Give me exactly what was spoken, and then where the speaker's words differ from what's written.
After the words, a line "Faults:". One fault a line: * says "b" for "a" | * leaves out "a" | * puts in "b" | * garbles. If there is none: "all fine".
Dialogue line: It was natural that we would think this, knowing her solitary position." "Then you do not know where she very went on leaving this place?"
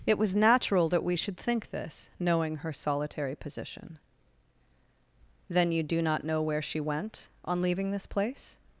It was natural that we should think this, knowing her solitary position." "Then you do not know where she went on leaving this place?"
Faults:
* says "should" for "would"
* leaves out "very"